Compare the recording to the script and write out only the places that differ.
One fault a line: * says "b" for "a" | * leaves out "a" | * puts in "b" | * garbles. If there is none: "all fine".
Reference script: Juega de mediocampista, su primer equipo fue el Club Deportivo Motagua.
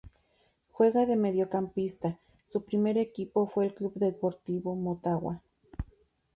all fine